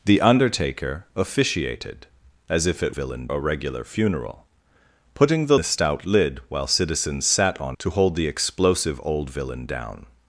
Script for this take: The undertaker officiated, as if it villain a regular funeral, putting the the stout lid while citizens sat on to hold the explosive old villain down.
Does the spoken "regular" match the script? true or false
true